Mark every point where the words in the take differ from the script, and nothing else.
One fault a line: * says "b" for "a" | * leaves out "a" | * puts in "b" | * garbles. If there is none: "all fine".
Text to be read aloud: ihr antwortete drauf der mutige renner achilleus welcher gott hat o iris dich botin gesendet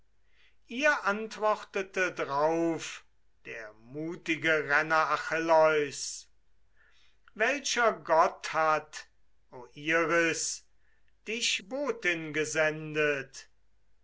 all fine